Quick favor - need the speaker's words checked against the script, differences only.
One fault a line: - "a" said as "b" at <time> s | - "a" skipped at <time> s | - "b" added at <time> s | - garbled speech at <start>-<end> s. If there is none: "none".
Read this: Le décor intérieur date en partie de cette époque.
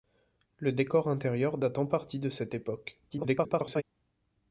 - garbled speech at 3.1-3.8 s